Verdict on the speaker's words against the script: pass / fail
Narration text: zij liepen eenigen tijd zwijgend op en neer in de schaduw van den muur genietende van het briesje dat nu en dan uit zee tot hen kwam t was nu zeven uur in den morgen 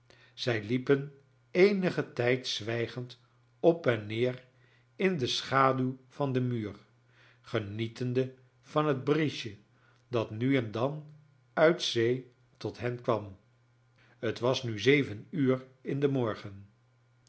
pass